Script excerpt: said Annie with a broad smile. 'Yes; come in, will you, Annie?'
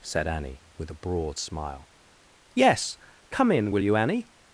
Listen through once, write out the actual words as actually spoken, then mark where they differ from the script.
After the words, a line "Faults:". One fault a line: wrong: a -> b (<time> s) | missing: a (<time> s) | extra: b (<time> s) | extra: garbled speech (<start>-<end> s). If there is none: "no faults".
said Annie with a broad smile. 'Yes; come in, will you, Annie?'
Faults:
no faults